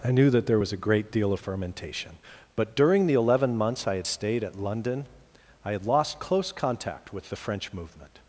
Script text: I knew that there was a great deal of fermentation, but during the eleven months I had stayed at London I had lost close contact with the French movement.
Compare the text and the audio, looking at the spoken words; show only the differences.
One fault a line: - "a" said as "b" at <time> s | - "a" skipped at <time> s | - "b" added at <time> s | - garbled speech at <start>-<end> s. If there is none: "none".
none